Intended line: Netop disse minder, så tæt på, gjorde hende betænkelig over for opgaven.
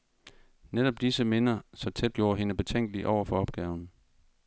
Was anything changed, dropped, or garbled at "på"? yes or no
yes